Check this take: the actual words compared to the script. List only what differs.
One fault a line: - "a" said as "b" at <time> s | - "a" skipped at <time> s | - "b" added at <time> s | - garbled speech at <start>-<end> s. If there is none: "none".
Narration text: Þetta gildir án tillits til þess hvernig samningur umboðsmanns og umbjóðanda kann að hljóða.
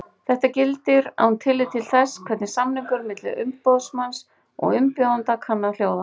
- "milli" added at 3.1 s